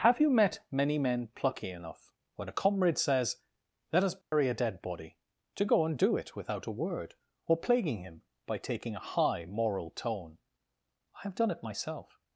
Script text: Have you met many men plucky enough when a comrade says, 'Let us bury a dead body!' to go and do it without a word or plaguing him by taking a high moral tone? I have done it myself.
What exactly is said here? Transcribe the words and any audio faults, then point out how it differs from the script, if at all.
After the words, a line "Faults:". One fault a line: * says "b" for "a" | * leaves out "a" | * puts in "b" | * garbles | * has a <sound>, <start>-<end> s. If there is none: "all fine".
Have you met many men plucky enough when a comrade says, 'Let us bury a dead body!' to go and do it without a word or plaguing him by taking a high moral tone? I have done it myself.
Faults:
* has a dropout, 4.2-4.3 s